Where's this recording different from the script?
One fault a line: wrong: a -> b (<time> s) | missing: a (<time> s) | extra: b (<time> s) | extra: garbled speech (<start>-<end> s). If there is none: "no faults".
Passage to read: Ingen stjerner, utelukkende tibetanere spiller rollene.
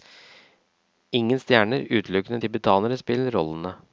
no faults